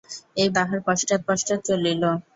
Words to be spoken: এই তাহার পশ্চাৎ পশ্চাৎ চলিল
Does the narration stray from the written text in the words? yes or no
no